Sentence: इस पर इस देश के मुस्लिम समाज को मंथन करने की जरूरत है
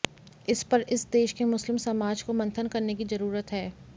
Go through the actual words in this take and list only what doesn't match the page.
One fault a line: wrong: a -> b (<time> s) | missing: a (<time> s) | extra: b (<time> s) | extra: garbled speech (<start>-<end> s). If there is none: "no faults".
no faults